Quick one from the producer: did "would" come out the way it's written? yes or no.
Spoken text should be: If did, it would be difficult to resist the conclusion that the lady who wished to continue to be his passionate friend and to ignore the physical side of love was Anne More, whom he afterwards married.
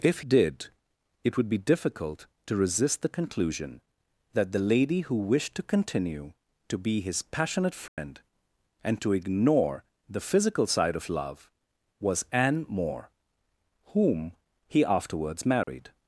yes